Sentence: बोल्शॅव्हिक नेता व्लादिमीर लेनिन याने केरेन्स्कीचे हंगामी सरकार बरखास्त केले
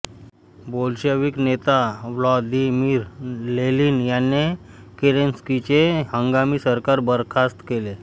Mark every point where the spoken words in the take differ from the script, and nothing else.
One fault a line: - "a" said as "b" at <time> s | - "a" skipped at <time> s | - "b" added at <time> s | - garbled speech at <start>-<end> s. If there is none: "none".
none